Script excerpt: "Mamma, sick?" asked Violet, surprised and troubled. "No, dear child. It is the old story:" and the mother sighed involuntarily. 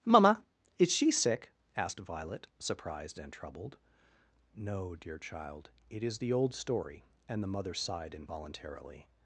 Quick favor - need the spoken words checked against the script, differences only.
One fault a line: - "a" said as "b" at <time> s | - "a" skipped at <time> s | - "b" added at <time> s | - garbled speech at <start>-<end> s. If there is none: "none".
- "is she" added at 0.8 s